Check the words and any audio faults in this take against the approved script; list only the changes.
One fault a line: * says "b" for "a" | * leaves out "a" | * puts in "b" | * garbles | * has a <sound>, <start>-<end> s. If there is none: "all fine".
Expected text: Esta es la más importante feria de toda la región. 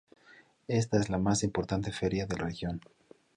* leaves out "toda la"